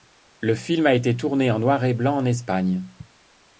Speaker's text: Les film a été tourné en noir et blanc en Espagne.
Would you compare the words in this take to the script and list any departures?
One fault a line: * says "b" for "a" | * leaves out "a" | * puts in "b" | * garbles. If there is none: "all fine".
* says "Le" for "Les"